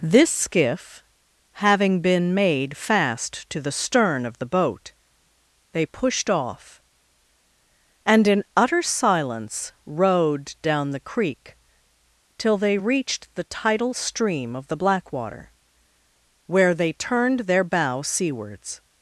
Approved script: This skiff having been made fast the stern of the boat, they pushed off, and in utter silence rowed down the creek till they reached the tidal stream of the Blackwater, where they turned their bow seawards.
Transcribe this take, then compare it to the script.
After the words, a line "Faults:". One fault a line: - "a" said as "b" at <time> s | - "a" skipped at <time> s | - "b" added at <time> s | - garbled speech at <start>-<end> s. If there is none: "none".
This skiff having been made fast to the stern of the boat, they pushed off, and in utter silence rowed down the creek till they reached the tidal stream of the Blackwater, where they turned their bow seawards.
Faults:
- "to" added at 3.5 s